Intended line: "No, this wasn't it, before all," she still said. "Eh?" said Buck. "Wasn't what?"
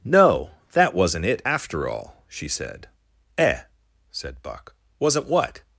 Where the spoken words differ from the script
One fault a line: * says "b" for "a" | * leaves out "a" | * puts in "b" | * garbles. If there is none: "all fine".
* says "that" for "this"
* says "after" for "before"
* leaves out "still"